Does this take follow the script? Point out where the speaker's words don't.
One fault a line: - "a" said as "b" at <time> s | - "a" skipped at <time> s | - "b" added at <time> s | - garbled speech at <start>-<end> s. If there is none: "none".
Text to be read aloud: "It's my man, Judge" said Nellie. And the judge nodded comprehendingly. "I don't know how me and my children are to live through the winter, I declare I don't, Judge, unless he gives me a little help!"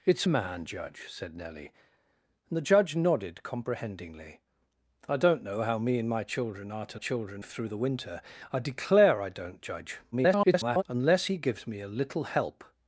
- "my" skipped at 0.3 s
- "live" said as "children" at 6.9 s
- garbled speech at 10.1-10.8 s